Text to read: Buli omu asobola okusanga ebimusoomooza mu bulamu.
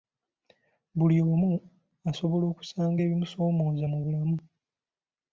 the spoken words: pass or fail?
pass